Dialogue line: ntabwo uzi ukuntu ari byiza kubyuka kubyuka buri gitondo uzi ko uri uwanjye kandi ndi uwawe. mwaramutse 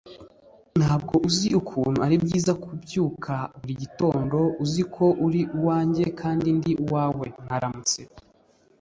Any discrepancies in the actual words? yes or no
yes